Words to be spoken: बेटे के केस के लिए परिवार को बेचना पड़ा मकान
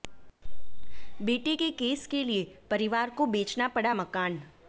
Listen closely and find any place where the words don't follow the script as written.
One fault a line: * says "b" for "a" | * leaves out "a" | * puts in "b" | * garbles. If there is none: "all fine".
all fine